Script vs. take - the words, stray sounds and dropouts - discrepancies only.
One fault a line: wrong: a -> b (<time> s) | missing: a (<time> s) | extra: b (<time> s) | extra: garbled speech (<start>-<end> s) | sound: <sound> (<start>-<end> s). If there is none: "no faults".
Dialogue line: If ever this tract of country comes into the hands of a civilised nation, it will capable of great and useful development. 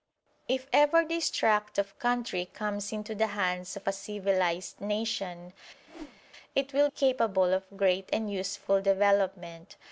sound: whoosh (5.9-6.2 s)